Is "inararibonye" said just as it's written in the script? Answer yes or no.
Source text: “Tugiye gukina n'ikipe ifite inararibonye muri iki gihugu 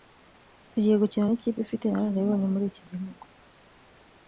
yes